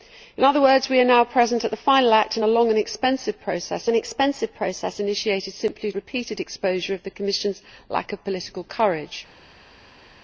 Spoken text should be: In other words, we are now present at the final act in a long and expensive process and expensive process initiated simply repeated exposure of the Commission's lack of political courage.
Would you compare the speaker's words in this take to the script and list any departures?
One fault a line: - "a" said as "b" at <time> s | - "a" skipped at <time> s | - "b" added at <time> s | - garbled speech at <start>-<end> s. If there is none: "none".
none